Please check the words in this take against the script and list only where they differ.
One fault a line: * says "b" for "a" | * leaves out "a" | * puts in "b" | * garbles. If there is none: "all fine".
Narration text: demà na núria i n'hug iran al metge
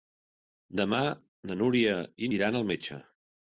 * leaves out "n'hug"